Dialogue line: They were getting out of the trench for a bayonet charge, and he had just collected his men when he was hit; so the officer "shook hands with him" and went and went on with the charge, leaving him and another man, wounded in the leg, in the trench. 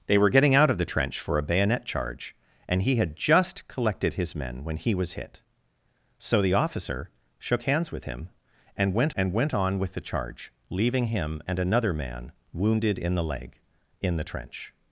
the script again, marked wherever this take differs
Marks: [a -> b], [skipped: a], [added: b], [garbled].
They were getting out of the trench for a bayonet charge, and he had just collected his men when he was hit; so the officer "shook hands with him" and went and went on with the charge, leaving him and another man, wounded in the leg, in the trench.